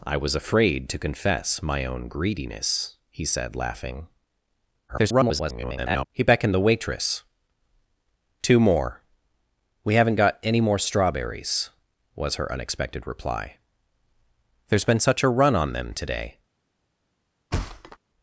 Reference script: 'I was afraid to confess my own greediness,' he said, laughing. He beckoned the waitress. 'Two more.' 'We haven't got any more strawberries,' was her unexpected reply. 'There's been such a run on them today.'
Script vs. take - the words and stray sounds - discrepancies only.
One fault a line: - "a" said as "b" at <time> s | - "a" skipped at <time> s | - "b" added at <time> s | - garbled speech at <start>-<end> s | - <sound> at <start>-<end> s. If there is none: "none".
- garbled speech at 4.9-6.0 s
- thud at 17.5-18.0 s